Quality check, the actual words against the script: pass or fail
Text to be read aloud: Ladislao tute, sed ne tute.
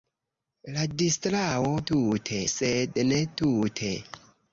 pass